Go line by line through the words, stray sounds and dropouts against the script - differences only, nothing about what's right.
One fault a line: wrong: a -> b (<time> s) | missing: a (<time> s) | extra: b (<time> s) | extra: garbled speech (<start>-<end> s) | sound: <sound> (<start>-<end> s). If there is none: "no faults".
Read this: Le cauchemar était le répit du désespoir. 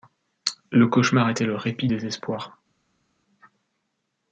missing: du (1.9 s)